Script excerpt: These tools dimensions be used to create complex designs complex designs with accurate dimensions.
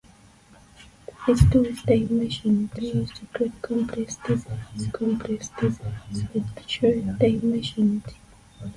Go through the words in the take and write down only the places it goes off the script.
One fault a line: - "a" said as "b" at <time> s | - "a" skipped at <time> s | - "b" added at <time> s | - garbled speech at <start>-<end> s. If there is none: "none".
none